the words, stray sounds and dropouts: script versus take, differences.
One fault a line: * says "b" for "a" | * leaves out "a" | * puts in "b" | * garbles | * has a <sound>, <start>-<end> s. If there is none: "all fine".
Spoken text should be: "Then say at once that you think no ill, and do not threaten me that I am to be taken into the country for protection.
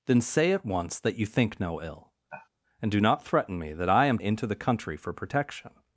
* has a sigh, 2.3-2.5 s
* leaves out "to be taken"